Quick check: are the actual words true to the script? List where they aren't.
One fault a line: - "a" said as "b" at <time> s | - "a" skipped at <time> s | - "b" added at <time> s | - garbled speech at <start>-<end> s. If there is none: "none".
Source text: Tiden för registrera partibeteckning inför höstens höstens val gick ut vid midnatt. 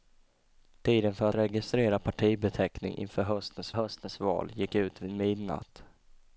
none